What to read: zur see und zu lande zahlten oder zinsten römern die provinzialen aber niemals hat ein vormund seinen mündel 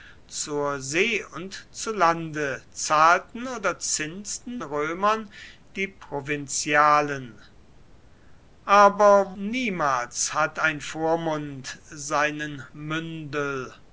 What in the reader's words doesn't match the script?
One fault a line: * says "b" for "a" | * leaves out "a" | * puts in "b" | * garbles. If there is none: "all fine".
all fine